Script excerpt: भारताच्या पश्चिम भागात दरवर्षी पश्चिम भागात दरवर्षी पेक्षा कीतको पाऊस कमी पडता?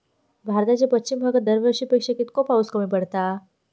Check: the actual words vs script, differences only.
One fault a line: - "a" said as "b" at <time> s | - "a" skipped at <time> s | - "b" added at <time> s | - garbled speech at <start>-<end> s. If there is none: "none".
- "पश्चिम भागात दरवर्षी" skipped at 1.8 s